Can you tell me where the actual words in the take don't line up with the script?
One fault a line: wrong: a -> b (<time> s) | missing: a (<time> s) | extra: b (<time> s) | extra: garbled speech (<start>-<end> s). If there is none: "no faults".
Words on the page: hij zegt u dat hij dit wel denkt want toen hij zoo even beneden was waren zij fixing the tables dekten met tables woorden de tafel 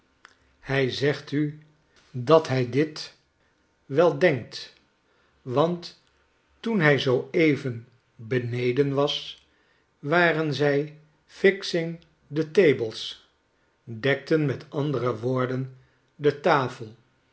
wrong: tables -> andere (14.7 s)